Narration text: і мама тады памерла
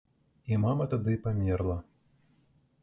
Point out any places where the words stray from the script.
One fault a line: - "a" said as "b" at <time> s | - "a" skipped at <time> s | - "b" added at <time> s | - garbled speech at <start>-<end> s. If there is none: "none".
none